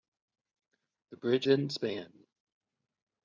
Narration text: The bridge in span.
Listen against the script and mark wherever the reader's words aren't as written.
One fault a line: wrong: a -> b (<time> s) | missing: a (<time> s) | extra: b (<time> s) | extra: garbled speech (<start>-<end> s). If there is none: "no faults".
no faults